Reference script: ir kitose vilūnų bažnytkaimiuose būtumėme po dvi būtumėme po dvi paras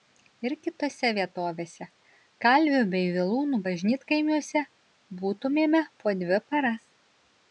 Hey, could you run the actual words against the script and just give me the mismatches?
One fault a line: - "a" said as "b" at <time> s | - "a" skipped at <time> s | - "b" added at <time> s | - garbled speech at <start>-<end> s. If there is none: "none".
- "vilūnų bažnytkaimiuose būtumėme po dvi" said as "vietovėse kalvių bei vilūnų bažnytkaimiuose" at 1.2 s